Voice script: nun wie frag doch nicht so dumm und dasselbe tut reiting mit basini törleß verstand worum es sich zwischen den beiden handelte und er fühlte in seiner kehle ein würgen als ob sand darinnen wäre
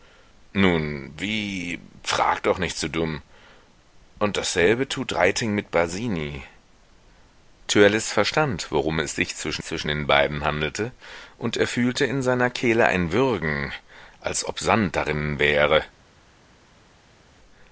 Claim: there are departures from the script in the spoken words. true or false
true